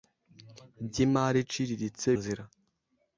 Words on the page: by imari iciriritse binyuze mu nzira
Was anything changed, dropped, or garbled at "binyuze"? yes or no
yes